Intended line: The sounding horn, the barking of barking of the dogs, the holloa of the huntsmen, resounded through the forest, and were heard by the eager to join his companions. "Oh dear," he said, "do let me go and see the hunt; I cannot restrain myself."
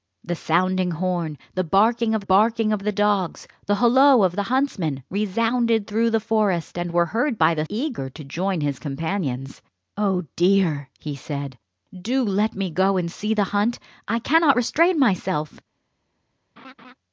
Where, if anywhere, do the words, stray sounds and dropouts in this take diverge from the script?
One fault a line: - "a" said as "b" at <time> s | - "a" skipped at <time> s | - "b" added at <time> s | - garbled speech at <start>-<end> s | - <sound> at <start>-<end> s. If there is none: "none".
- laugh at 16.6-16.9 s